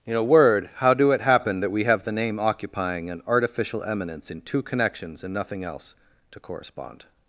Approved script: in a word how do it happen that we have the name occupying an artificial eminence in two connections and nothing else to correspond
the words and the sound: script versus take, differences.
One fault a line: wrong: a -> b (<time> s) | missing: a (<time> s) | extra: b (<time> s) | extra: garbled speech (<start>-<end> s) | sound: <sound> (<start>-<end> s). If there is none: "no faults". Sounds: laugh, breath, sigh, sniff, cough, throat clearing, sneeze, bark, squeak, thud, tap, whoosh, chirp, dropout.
no faults